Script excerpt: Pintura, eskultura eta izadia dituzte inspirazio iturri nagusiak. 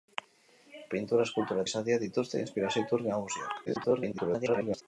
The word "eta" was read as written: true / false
false